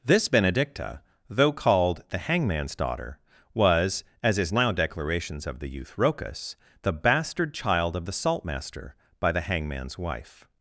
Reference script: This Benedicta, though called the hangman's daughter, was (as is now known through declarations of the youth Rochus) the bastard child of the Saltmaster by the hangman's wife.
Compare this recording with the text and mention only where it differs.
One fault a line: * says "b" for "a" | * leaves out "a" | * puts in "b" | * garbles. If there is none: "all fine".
* leaves out "known through"